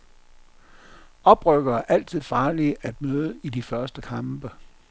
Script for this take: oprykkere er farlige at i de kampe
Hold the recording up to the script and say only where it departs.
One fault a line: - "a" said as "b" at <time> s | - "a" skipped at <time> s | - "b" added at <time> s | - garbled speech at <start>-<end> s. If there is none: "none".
- "altid" added at 1.9 s
- "møde" added at 3.0 s
- "første" added at 3.6 s